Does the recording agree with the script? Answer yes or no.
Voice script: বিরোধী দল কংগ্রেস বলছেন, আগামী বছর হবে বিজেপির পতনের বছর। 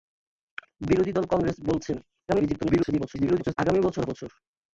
no